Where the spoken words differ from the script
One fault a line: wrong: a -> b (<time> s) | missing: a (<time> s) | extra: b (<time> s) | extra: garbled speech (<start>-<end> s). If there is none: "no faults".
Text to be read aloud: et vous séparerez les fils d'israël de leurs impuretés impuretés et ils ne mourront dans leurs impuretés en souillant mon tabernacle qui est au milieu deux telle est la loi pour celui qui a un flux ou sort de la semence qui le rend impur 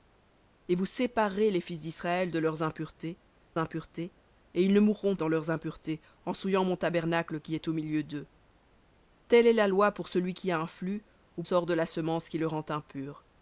no faults